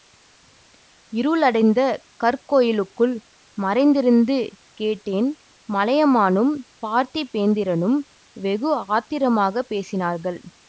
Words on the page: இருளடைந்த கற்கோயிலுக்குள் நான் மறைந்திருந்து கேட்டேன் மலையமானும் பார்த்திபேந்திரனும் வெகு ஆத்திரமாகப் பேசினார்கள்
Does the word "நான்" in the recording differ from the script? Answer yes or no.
yes